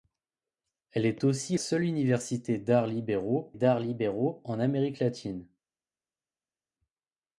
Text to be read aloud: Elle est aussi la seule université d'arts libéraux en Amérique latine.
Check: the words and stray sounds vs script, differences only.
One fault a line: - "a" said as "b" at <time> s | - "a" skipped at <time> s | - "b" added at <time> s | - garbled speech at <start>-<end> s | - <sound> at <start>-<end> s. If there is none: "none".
- "la" skipped at 1.6 s
- "d'arts libéraux" added at 3.5 s